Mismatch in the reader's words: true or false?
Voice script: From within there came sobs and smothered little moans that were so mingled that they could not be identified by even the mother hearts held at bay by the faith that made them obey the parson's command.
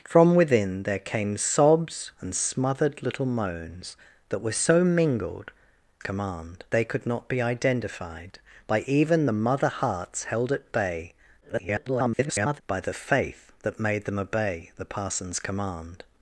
true